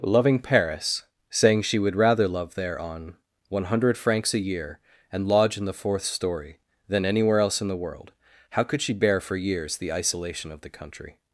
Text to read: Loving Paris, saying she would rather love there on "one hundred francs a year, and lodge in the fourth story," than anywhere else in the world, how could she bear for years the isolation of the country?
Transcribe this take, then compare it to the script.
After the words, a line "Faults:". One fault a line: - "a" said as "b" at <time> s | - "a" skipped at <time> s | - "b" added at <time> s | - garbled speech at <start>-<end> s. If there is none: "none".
Loving Paris, saying she would rather love there on "one hundred francs a year, and lodge in the fourth story," than anywhere else in the world, how could she bear for years the isolation of the country?
Faults:
none